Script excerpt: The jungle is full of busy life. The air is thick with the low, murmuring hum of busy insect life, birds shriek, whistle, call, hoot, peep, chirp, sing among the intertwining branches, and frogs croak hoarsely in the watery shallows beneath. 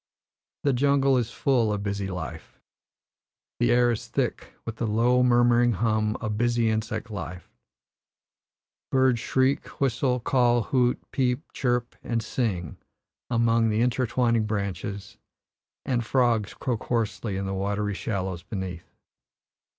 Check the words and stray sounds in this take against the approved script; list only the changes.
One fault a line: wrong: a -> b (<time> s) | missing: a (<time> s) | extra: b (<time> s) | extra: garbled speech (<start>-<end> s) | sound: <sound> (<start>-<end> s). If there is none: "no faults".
extra: and (12.0 s)